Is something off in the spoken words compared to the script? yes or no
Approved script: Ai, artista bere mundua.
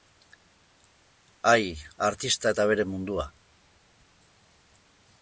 yes